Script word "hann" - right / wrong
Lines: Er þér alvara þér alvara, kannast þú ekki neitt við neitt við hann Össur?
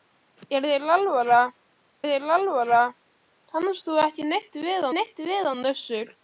right